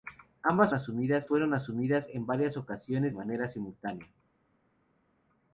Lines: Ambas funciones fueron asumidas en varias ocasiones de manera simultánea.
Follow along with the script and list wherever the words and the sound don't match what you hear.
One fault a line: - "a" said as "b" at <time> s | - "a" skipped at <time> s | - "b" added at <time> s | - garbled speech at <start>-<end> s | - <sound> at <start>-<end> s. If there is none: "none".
- "funciones" said as "asumidas" at 0.7 s
- "de" skipped at 3.1 s